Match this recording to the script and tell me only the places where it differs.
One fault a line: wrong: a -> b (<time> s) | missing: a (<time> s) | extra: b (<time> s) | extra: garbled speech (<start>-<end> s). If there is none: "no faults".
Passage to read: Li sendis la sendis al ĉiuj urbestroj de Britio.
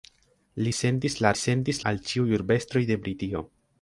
no faults